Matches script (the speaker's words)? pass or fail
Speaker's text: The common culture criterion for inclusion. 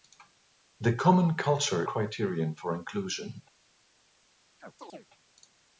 pass